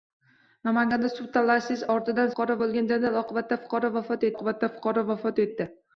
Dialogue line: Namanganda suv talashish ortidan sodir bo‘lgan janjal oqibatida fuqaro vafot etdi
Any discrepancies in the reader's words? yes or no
yes